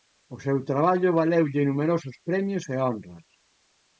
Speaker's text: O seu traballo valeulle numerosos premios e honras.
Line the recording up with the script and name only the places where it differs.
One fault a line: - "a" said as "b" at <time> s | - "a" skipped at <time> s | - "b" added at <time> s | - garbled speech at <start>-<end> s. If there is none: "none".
none